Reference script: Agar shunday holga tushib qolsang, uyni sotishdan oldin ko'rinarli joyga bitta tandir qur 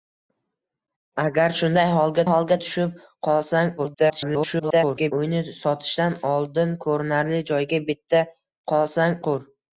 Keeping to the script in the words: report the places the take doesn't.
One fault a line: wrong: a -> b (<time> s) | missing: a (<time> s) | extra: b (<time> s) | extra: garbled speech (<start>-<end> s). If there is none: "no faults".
extra: holga (2.3 s)
extra: garbled speech (3.8-5.1 s)
wrong: tandir -> qolsang (8.7 s)